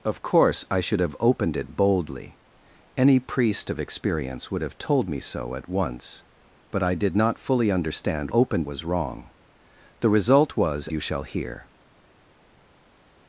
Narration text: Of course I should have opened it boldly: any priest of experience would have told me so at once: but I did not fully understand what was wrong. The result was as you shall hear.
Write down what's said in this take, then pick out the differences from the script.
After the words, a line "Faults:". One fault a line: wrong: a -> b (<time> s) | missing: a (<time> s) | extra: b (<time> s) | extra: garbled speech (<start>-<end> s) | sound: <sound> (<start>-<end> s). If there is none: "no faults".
Of course I should have opened it boldly: any priest of experience would have told me so at once: but I did not fully understand opened was wrong. The result was you shall hear.
Faults:
wrong: what -> opened (8.3 s)
missing: as (10.9 s)